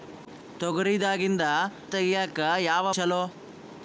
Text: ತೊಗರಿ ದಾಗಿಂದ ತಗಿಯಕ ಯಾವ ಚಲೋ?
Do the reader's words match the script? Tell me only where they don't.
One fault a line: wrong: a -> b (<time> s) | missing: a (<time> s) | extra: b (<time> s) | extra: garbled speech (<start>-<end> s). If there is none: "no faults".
no faults